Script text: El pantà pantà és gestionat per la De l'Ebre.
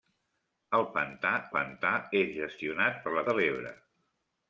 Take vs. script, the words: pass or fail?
pass